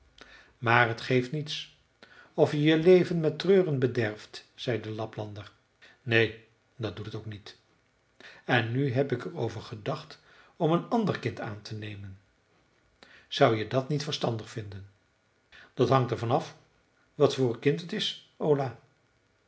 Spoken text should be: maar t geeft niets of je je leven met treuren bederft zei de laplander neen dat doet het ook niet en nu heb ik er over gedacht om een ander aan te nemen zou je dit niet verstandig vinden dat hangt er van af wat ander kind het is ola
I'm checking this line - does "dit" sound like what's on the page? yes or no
no